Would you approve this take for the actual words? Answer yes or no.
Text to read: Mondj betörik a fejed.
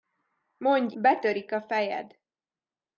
yes